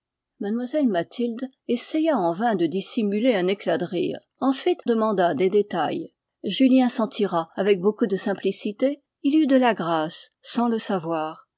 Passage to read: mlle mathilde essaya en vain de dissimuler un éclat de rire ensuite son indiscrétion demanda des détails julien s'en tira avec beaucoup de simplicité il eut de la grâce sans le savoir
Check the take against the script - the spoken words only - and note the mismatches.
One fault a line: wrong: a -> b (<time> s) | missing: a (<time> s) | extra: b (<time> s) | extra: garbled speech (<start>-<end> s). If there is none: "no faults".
missing: son indiscrétion (4.8 s)